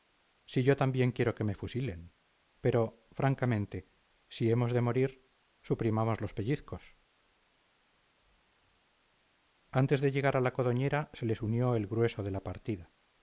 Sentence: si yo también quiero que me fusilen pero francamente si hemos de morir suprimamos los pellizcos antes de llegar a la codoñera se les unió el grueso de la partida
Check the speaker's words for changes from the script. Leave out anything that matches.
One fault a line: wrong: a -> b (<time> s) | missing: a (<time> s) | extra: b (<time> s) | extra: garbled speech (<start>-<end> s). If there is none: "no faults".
no faults